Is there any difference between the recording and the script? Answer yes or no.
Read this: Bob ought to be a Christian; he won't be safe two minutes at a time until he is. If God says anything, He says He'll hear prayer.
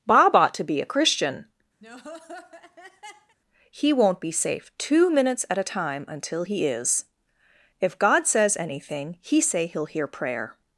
yes